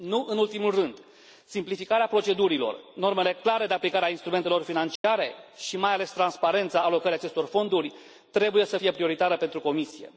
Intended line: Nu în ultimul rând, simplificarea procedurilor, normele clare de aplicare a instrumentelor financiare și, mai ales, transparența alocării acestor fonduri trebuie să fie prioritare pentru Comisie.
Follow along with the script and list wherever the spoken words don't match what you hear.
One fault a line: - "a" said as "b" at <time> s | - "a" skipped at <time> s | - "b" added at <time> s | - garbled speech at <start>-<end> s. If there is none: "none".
none